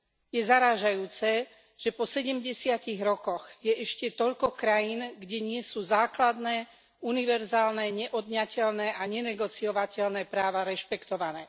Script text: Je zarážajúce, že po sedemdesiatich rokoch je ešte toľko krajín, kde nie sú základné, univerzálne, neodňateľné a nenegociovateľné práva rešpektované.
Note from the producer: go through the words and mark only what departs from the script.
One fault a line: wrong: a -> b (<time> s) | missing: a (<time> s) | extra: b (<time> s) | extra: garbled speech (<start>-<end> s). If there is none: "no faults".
no faults